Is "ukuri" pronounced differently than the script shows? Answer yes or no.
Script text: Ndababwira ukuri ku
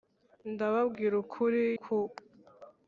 no